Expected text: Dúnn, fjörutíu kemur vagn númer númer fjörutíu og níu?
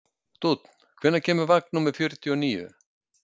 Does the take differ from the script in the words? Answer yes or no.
yes